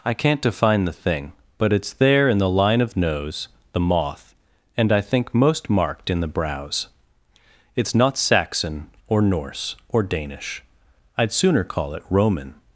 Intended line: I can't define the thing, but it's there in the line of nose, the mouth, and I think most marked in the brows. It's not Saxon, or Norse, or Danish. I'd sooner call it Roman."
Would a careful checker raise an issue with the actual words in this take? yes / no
yes